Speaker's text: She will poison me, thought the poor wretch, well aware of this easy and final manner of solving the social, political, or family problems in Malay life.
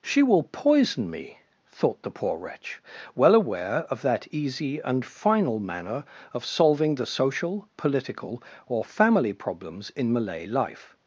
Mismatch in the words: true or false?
true